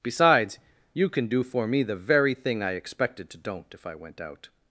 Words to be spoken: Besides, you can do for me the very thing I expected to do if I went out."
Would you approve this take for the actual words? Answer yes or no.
no